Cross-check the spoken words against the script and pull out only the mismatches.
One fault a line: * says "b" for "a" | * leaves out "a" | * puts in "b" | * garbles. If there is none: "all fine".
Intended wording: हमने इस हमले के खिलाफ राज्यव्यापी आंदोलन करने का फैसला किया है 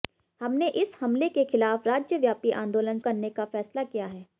all fine